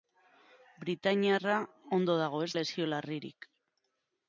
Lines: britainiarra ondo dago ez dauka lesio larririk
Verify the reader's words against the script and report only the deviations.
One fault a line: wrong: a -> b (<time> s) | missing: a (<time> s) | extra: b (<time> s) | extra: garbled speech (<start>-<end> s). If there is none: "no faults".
missing: dauka (2.5 s)